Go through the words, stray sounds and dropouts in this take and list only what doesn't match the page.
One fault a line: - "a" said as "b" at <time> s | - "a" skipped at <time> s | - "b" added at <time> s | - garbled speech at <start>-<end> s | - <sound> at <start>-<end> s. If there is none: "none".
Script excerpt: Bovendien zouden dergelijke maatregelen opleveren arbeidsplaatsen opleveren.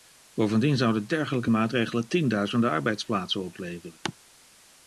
- "opleveren" said as "tienduizenden" at 2.1 s